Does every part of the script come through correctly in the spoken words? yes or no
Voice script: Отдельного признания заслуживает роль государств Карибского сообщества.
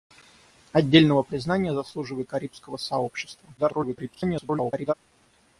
no